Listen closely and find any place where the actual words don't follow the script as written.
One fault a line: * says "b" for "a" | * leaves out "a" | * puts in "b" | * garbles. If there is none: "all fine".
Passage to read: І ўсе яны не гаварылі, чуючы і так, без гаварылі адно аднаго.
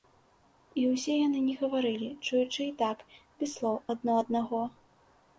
* says "слоў" for "гаварылі"